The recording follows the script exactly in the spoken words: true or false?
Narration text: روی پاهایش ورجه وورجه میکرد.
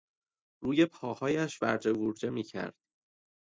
true